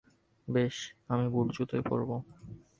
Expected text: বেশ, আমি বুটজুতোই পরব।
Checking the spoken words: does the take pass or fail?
pass